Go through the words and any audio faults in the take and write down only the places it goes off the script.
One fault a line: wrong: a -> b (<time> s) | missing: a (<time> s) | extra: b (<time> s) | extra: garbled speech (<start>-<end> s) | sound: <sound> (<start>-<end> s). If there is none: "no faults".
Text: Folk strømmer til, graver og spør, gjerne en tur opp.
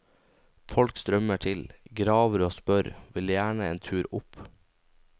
extra: vil (3.1 s)